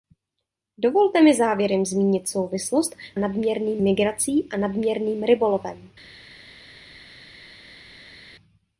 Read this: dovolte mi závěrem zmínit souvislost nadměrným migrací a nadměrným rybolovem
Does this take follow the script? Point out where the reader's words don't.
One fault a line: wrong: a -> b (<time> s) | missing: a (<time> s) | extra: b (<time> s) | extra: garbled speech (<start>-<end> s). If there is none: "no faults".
no faults